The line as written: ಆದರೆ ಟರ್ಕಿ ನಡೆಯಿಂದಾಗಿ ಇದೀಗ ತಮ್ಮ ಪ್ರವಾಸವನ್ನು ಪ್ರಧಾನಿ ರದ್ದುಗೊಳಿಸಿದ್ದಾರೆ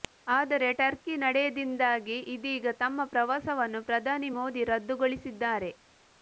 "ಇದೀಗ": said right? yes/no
yes